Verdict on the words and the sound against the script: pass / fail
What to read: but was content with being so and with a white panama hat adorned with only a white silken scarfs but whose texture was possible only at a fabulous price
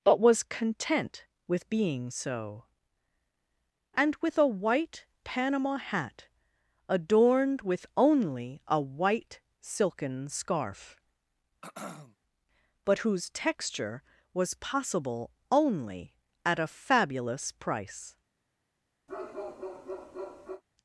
fail